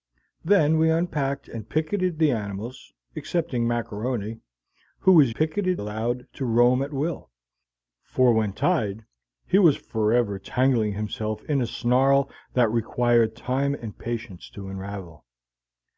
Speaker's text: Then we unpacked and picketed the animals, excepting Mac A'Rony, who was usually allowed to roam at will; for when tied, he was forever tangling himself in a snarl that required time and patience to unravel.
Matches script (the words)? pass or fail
fail